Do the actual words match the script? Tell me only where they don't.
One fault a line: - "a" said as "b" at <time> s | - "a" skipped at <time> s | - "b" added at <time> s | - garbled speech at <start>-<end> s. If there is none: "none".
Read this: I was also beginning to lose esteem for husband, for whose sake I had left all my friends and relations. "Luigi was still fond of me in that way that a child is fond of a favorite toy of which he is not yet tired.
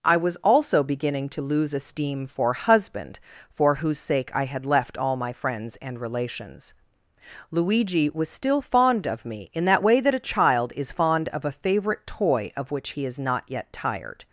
none